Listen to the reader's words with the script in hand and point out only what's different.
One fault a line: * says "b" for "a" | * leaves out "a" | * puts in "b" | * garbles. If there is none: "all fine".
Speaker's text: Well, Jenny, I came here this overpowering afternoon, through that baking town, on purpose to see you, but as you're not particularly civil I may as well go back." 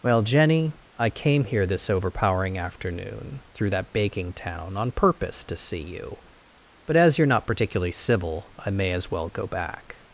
all fine